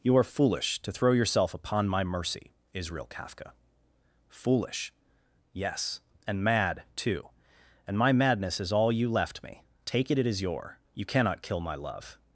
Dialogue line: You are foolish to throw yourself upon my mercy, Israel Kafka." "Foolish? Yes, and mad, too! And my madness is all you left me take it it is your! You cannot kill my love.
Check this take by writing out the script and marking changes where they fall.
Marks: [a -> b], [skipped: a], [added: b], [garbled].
You are foolish to throw yourself upon my mercy, Israel Kafka." "Foolish? Yes, and mad, too! And my madness is all you left me take it it is your! You cannot kill my love.